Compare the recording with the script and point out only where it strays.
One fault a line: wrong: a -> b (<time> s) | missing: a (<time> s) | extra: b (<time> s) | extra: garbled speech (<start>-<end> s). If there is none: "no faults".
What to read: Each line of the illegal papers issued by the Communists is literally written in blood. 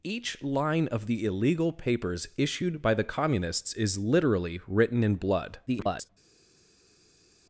extra: garbled speech (5.7-6.1 s)